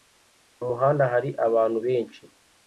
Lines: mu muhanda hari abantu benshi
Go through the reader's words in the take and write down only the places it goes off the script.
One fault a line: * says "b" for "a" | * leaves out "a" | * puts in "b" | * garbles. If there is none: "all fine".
all fine